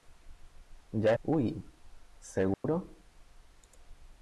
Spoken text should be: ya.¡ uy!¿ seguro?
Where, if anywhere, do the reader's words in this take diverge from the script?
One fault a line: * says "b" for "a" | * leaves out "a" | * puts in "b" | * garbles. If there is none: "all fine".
all fine